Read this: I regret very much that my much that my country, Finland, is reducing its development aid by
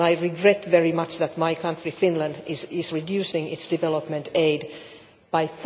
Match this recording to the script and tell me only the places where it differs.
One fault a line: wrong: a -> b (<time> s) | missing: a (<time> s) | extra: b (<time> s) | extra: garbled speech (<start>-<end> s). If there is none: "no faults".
missing: much that my (1.5 s)